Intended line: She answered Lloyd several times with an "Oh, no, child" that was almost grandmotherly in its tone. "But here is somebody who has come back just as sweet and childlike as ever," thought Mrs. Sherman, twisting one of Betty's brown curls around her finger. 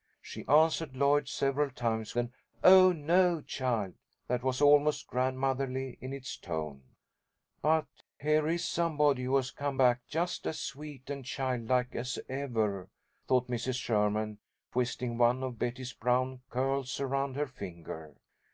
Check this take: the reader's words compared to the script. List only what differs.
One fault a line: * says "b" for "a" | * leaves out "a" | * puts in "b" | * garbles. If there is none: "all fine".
* leaves out "with"